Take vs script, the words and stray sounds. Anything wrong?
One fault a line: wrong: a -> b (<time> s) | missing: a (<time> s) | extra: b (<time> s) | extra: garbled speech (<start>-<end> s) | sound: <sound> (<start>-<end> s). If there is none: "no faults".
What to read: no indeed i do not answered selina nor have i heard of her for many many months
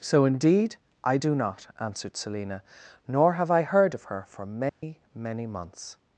wrong: no -> so (0.0 s)
sound: dropout (4.7-4.8 s)